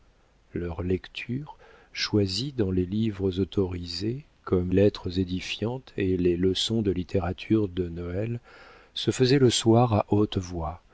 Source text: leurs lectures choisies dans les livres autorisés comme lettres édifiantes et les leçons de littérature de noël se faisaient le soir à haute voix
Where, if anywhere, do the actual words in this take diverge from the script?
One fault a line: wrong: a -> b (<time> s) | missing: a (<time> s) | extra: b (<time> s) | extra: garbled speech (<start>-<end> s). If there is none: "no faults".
no faults